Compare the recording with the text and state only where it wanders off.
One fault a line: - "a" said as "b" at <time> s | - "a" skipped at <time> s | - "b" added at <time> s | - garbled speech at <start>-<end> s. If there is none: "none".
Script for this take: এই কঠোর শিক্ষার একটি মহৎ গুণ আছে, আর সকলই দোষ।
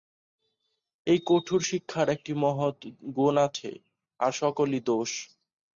none